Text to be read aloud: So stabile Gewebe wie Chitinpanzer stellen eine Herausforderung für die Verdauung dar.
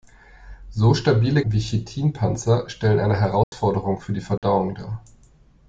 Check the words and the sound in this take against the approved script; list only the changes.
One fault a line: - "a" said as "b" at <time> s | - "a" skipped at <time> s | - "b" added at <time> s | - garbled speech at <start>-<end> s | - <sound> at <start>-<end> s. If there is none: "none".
- "Gewebe" skipped at 1.4 s
- dropout at 3.4-3.5 s
- dropout at 4.4-4.4 s